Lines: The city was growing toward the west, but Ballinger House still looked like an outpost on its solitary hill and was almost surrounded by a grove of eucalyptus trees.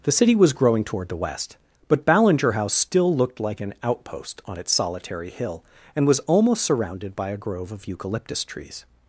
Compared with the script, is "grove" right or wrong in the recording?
right